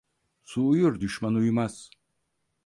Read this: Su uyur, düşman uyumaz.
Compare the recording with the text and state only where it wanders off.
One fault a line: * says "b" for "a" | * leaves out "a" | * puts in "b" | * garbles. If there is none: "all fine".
all fine